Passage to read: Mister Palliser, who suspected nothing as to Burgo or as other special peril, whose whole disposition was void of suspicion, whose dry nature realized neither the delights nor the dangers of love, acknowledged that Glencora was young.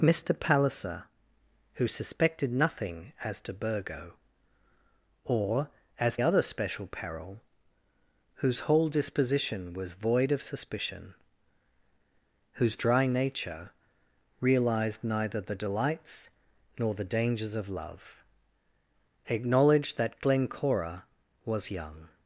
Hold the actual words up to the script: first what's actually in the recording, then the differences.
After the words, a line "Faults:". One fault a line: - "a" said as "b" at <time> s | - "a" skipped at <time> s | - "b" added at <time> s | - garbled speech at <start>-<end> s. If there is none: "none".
Mister Palliser, who suspected nothing as to Burgo or as other special peril, whose whole disposition was void of suspicion, whose dry nature realized neither the delights nor the dangers of love, acknowledged that Glencora was young.
Faults:
none